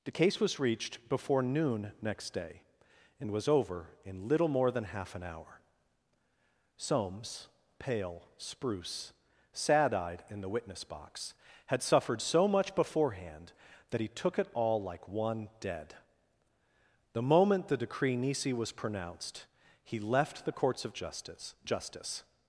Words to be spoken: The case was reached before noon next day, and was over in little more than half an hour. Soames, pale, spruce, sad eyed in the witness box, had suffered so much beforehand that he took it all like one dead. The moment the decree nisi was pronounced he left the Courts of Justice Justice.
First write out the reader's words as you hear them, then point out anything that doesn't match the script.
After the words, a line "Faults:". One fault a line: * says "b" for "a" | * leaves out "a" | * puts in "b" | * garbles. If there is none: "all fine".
The case was reached before noon next day, and was over in little more than half an hour. Soames, pale, spruce, sad eyed in the witness box, had suffered so much beforehand that he took it all like one dead. The moment the decree nisi was pronounced he left the Courts of Justice Justice.
Faults:
all fine